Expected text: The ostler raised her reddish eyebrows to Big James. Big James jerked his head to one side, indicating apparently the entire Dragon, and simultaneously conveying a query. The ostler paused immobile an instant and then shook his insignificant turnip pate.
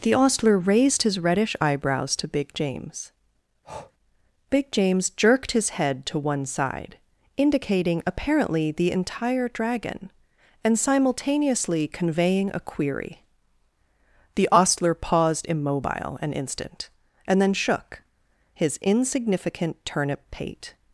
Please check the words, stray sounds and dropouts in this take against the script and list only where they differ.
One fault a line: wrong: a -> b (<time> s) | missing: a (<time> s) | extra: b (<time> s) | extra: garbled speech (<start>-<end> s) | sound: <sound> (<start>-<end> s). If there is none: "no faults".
wrong: her -> his (1.0 s)
sound: breath (3.6-3.9 s)